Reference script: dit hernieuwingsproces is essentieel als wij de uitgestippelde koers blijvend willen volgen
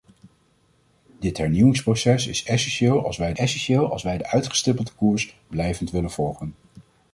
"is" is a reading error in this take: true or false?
false